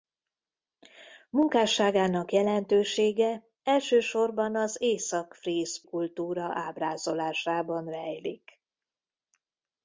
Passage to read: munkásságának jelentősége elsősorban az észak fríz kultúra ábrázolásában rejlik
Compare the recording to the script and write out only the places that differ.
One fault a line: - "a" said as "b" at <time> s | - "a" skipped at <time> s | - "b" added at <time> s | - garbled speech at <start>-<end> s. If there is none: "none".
none